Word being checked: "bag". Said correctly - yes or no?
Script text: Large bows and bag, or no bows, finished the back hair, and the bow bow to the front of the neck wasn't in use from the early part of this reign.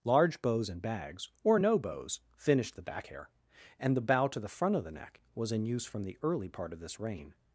no